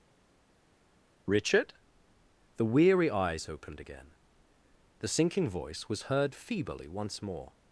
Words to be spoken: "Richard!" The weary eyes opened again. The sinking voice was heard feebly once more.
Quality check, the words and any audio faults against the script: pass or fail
pass